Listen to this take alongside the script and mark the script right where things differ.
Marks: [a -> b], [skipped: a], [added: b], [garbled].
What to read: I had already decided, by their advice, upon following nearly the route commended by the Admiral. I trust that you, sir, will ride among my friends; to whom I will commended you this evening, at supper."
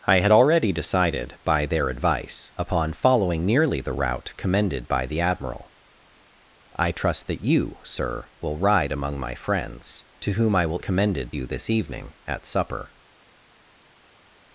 I had already decided, by their advice, upon following nearly the route commended by the Admiral. I trust that you, sir, will ride among my friends; to whom I will commended you this evening, at supper."